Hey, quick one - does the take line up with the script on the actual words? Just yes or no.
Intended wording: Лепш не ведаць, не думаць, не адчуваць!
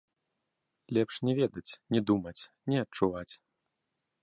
yes